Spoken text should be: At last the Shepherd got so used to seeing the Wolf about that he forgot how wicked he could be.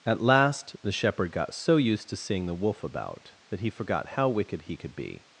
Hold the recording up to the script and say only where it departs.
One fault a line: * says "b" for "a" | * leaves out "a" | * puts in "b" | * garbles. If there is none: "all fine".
all fine